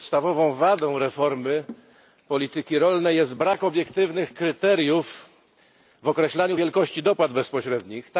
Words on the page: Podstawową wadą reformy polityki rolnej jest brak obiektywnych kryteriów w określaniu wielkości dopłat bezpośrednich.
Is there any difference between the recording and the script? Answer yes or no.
no